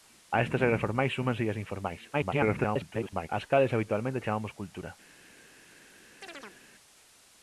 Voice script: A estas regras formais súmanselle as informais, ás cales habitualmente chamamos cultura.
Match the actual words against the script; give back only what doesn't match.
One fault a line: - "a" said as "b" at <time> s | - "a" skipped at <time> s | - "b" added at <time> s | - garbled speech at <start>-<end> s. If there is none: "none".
- garbled speech at 2.1-3.3 s